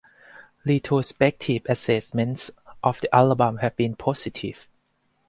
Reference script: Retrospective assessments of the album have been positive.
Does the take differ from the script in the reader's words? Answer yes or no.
no